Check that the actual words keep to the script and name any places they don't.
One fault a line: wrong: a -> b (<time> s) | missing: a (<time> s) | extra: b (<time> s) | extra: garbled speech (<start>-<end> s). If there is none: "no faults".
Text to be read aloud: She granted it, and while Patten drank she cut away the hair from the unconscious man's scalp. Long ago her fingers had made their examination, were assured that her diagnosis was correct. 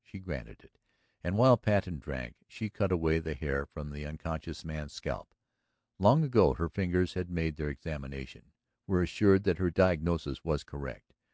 no faults